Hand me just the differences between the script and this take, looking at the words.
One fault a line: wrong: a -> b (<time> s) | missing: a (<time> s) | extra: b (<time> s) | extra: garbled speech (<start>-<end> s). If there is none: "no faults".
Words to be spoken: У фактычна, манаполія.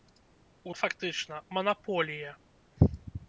no faults